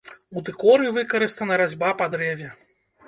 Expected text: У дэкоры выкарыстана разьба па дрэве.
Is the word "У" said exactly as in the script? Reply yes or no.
yes